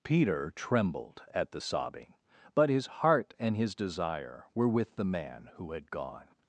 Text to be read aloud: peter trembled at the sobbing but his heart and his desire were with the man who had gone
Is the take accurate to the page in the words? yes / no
yes